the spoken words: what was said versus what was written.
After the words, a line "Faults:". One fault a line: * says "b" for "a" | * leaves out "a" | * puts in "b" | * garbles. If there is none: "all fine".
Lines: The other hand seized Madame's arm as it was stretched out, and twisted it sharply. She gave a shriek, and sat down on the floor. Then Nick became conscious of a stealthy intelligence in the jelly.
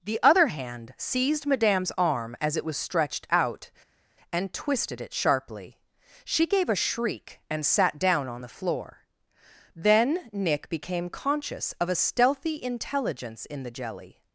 The other hand seized Madame's arm as it was stretched out, and twisted it sharply. She gave a shriek, and sat down on the floor. Then Nick became conscious of a stealthy intelligence in the jelly.
Faults:
all fine